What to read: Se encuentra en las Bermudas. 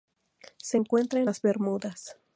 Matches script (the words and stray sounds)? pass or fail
pass